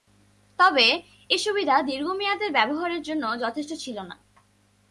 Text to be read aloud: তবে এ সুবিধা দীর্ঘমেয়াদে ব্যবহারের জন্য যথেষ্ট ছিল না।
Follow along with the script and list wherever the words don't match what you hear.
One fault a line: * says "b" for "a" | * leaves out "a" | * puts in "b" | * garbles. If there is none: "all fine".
all fine